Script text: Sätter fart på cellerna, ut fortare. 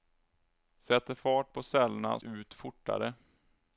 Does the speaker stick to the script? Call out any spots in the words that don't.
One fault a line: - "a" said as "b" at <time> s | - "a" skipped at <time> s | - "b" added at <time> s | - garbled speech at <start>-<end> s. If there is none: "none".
none